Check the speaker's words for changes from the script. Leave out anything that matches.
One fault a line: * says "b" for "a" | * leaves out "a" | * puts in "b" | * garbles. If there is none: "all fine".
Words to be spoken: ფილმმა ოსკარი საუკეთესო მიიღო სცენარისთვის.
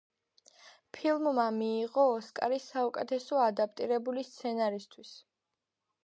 * puts in "მიიღო"
* says "ადაპტირებული" for "მიიღო"